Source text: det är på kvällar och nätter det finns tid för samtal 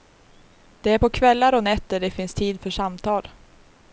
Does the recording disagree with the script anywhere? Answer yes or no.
no